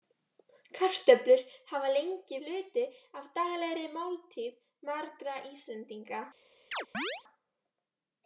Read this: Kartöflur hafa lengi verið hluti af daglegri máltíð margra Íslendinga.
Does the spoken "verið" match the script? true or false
false